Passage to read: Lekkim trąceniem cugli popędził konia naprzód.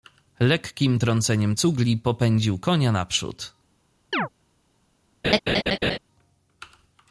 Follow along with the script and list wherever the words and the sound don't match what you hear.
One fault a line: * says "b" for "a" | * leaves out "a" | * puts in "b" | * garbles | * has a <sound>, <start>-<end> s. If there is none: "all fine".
* has a chirp, 4.1-4.3 s
* has a laugh, 5.2-6.0 s